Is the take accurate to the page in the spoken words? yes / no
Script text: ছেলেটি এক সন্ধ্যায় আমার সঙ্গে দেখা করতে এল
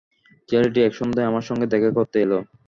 yes